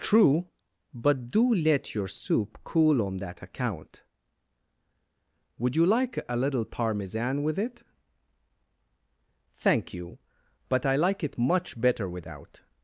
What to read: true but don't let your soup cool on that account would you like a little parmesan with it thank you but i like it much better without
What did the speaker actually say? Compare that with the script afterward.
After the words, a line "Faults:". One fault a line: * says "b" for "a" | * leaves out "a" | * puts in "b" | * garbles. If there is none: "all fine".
true but do let your soup cool on that account would you like a little parmesan with it thank you but i like it much better without
Faults:
* says "do" for "don't"